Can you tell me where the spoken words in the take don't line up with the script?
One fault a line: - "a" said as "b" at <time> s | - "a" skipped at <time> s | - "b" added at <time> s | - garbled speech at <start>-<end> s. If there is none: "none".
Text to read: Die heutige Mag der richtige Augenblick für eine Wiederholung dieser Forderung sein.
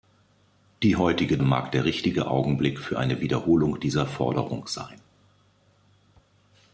none